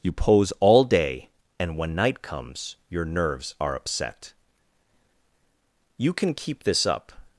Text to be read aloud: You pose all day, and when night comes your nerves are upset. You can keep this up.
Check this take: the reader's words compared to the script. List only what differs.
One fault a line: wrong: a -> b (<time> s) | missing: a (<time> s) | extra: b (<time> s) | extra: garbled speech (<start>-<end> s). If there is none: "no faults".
no faults